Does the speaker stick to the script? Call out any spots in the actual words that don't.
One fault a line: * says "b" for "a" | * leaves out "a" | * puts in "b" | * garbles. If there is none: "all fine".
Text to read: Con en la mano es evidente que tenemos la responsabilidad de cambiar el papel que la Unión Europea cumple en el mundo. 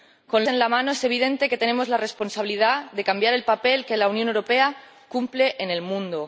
all fine